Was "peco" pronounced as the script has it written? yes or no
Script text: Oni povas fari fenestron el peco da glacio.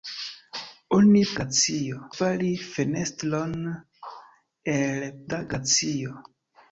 no